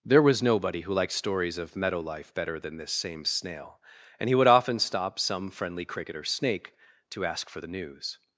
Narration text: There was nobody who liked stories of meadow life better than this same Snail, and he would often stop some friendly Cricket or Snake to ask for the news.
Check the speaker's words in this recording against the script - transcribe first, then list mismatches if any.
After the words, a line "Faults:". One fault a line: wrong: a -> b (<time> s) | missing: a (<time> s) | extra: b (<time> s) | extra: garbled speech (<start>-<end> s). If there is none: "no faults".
There was nobody who liked stories of meadow life better than this same Snail, and he would often stop some friendly Cricket or Snake to ask for the news.
Faults:
no faults